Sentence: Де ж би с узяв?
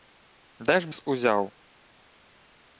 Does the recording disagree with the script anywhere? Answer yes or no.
yes